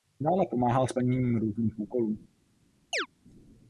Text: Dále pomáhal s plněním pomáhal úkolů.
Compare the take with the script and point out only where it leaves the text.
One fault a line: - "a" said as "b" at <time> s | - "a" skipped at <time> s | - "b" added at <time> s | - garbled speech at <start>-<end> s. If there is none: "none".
- "pomáhal" said as "různých" at 1.4 s